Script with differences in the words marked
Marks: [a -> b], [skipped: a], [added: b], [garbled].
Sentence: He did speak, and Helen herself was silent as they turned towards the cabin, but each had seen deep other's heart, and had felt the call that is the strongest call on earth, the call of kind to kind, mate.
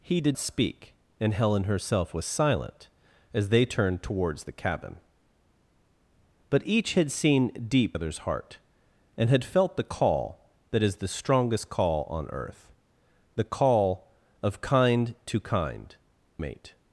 He did speak, and Helen herself was silent as they turned towards the cabin, but each had seen deep other's heart, and had felt the call that is the strongest call on earth, the call of kind to kind, mate.